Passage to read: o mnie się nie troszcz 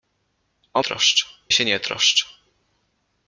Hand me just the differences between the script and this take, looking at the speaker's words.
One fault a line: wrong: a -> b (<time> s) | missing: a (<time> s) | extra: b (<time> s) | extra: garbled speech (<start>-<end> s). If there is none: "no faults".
wrong: mnie -> troszcz (0.8 s)